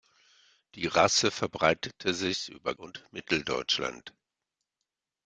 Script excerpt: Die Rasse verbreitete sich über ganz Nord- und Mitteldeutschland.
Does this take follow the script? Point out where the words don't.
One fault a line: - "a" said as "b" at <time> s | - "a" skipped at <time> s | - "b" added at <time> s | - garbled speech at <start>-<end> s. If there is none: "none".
- "ganz Nord" skipped at 2.7 s